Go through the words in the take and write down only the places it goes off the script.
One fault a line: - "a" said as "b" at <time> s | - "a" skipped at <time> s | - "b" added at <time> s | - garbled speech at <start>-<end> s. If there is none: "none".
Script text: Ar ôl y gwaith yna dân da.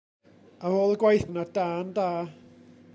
none